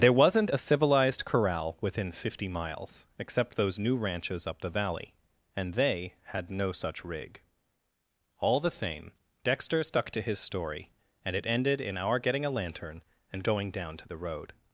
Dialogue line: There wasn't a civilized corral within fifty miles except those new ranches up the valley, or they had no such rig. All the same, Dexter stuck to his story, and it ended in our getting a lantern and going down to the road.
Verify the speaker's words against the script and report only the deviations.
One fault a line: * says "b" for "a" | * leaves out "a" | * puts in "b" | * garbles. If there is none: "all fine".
* says "and" for "or"